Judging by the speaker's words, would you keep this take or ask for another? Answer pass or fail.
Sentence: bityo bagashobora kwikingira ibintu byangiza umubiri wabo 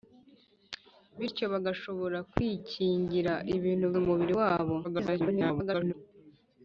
fail